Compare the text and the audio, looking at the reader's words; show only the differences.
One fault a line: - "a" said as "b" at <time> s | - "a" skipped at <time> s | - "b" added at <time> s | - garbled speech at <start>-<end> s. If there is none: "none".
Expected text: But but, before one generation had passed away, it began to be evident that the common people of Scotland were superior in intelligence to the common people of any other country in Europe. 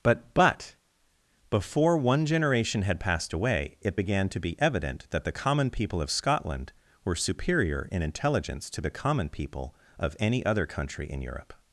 none